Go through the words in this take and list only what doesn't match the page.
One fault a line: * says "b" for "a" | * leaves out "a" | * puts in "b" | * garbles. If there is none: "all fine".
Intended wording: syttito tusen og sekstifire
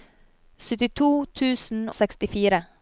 * leaves out "og"